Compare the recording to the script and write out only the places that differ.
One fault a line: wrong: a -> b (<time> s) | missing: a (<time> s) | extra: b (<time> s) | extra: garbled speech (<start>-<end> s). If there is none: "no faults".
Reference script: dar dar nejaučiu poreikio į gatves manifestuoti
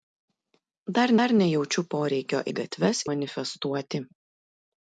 no faults